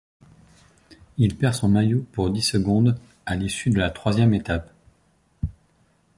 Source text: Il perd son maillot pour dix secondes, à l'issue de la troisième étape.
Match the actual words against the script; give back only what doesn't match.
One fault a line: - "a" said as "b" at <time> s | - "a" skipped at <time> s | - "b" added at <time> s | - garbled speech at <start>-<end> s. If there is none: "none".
none